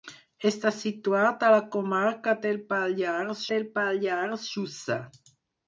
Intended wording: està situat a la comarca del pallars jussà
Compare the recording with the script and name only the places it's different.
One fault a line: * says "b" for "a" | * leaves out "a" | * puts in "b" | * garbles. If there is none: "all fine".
* puts in "del pallars"